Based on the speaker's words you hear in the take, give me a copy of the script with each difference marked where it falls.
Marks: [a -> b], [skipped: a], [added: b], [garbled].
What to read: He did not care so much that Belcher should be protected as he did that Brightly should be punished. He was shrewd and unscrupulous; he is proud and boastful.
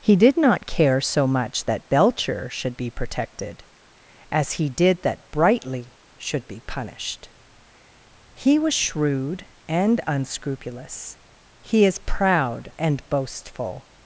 He did not care so much that Belcher should be protected as he did that Brightly should be punished. He was shrewd and unscrupulous; he is proud and boastful.